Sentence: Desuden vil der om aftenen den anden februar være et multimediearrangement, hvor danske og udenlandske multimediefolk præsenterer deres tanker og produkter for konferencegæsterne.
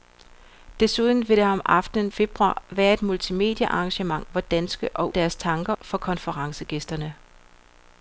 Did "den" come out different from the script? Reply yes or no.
yes